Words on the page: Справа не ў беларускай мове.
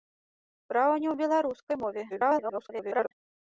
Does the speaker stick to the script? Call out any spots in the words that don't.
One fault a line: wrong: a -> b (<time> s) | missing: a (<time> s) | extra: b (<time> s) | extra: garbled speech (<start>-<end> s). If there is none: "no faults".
extra: garbled speech (2.1-3.1 s)